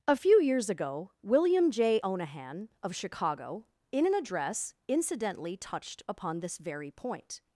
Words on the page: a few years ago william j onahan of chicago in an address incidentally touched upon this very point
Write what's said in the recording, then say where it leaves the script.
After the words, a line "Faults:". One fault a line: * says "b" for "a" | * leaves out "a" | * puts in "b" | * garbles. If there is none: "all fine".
a few years ago william j onahan of chicago in an address incidentally touched upon this very point
Faults:
all fine